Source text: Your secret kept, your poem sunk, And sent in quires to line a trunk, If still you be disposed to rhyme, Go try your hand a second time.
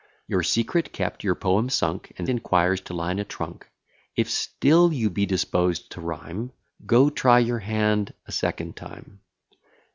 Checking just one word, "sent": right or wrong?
wrong